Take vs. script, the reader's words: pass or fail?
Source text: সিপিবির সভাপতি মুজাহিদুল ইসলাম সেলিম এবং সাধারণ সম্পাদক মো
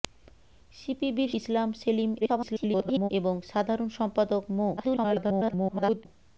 fail